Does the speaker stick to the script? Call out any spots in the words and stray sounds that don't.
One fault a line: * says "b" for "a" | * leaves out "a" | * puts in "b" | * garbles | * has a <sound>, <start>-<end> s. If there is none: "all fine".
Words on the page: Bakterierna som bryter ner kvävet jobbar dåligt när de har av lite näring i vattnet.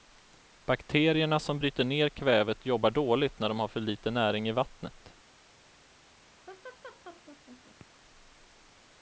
* says "för" for "av"
* has a laugh, 6.5-7.9 s